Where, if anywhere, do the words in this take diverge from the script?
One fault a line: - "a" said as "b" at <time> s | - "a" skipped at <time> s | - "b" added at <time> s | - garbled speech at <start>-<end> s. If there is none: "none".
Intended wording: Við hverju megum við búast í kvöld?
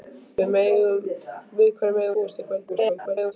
- "við" skipped at 2.2 s
- garbled speech at 2.7-3.3 s